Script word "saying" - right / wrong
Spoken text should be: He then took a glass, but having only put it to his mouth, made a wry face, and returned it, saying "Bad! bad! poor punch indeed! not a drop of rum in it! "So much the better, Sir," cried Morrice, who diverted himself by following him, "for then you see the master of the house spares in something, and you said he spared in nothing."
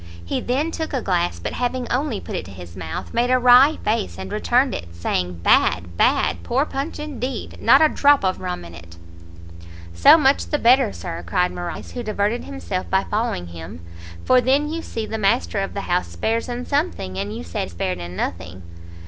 right